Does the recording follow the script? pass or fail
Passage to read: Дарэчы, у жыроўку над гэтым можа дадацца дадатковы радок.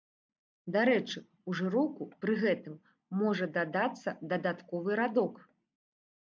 fail